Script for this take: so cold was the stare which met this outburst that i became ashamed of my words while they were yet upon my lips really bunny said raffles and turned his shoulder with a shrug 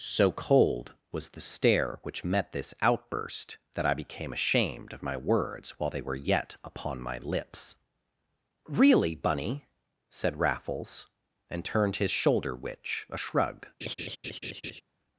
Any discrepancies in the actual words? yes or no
yes